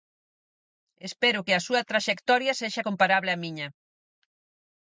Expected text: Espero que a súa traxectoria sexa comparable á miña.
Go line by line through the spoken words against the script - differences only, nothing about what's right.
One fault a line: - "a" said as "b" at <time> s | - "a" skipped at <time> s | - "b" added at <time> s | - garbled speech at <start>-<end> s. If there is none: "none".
none